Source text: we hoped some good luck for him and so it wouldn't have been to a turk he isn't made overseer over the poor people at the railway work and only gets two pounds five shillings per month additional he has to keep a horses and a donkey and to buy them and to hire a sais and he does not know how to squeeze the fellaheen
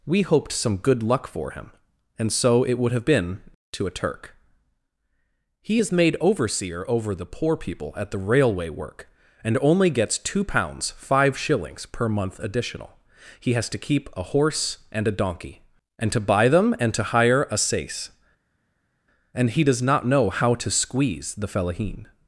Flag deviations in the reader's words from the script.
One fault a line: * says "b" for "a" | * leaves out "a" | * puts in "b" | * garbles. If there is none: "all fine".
* says "would" for "wouldn't"
* says "is" for "isn't"
* says "horse" for "horses"